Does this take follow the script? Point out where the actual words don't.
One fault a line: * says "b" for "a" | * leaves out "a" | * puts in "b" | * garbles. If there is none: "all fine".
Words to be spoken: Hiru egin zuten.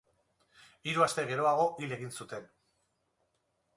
* puts in "aste geroago hil"